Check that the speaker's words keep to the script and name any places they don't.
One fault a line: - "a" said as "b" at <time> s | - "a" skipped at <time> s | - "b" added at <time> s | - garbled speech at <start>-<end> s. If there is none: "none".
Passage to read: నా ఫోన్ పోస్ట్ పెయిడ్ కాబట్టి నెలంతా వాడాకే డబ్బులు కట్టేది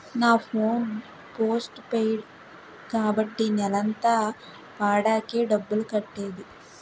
none